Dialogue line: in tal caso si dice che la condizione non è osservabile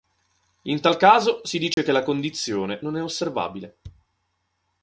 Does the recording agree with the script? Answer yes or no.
yes